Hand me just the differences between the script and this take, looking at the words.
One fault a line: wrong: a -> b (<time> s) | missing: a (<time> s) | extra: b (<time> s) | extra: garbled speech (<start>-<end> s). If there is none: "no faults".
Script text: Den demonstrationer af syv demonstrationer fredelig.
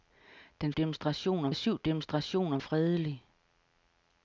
no faults